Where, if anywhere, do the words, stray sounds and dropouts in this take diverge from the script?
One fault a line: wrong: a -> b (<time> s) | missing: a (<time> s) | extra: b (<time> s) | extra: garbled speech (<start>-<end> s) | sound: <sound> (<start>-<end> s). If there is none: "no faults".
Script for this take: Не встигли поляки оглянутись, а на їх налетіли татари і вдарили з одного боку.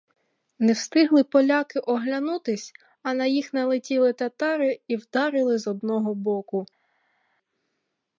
no faults